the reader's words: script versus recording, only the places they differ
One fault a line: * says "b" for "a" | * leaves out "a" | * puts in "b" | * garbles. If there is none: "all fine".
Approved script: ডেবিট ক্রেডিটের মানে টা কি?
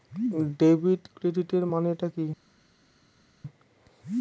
all fine